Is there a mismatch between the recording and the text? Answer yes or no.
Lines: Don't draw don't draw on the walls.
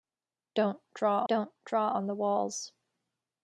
no